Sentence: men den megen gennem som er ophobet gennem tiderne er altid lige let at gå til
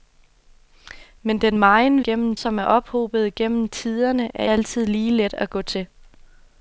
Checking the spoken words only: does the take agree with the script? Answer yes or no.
yes